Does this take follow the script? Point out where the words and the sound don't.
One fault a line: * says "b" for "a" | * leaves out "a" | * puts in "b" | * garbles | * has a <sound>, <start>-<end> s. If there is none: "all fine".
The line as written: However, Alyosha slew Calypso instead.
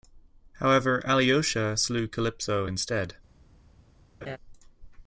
* has a laugh, 4.2-4.4 s